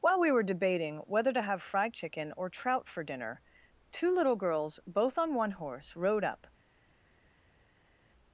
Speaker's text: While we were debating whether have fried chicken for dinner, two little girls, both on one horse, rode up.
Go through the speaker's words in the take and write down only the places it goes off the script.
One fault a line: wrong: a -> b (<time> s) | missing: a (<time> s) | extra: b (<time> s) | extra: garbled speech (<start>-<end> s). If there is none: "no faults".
extra: to (1.3 s)
extra: or trout (2.4 s)